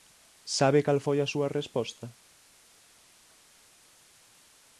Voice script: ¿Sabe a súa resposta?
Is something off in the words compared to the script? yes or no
yes